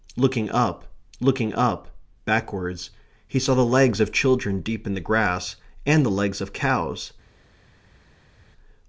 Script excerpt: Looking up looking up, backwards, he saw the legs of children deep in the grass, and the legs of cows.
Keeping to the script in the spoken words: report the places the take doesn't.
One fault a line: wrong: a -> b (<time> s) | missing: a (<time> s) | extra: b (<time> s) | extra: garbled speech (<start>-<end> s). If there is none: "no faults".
no faults